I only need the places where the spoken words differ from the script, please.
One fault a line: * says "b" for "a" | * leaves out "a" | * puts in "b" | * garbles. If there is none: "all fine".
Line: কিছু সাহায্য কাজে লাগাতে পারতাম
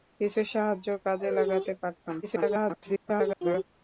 * garbles